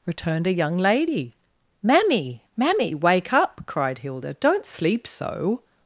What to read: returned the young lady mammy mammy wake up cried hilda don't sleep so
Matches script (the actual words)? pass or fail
fail